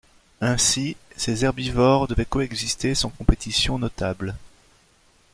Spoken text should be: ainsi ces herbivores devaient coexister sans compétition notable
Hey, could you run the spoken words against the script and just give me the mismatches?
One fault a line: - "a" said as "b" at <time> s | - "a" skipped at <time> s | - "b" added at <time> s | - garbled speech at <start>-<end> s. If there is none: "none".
none